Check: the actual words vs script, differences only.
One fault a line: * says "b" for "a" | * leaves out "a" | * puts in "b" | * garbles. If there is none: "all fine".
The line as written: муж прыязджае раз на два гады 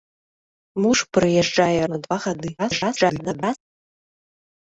* leaves out "раз"
* garbles